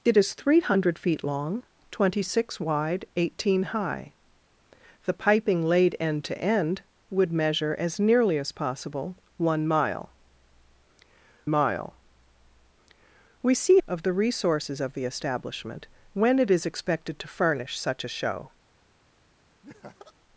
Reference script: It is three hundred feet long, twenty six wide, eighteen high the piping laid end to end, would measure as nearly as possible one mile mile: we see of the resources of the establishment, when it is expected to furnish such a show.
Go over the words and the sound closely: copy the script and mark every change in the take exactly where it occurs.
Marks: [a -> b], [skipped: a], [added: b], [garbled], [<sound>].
It is three hundred feet long, twenty six wide, eighteen high the piping laid end to end, would measure as nearly as possible one mile mile: we see of the resources of the establishment, when it is expected to furnish such a show. [laugh]